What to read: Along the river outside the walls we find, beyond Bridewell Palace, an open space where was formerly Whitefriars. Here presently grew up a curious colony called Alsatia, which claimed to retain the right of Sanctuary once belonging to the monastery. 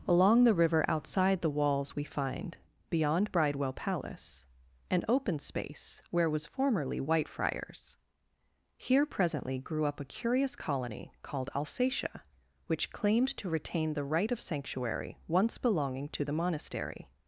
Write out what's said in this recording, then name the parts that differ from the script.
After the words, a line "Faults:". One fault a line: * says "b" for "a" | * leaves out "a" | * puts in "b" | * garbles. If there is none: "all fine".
Along the river outside the walls we find, beyond Bridewell Palace, an open space where was formerly Whitefriars. Here presently grew up a curious colony called Alsatia, which claimed to retain the right of Sanctuary once belonging to the monastery.
Faults:
all fine